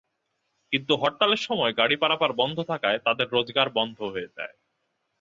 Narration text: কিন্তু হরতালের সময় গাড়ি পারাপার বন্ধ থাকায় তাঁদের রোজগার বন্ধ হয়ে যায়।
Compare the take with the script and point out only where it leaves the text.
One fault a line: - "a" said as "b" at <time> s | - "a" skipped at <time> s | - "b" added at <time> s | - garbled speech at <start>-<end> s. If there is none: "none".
none